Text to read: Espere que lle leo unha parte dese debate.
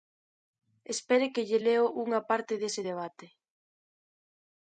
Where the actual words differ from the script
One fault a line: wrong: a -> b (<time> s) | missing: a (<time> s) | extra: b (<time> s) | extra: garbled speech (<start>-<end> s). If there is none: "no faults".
no faults